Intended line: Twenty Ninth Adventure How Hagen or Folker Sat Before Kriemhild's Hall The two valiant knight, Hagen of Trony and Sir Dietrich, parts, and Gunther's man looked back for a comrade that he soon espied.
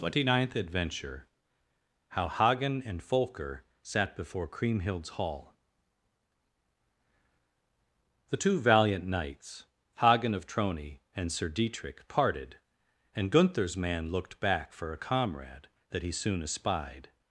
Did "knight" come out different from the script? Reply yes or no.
yes